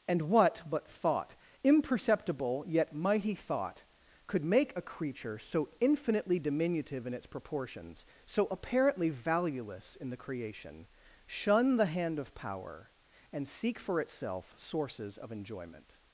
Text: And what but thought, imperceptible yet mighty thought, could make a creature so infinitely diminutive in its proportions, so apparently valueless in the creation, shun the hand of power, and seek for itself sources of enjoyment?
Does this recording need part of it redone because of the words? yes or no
no